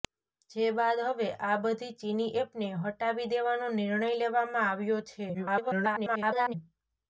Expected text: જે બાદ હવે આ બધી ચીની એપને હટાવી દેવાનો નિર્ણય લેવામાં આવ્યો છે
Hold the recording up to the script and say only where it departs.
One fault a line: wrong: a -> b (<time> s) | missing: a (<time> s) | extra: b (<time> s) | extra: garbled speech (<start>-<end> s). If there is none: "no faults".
extra: garbled speech (5.3-6.5 s)